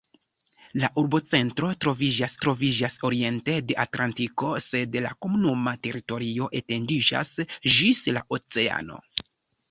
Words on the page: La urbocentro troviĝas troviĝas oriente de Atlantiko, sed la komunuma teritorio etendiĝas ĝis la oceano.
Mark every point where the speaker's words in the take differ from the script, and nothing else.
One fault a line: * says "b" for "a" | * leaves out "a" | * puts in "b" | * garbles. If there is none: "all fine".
all fine